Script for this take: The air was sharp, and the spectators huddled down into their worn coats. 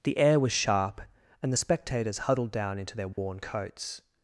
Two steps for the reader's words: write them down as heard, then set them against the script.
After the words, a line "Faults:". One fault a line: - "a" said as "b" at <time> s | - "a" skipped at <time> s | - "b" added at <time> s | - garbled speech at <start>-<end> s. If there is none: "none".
The air was sharp, and the spectators huddled down into their worn coats.
Faults:
none